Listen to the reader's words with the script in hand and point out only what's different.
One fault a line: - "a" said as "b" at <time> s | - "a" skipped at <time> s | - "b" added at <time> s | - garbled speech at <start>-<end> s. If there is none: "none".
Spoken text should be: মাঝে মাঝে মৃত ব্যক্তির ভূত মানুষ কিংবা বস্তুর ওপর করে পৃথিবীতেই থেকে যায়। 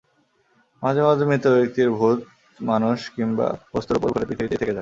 none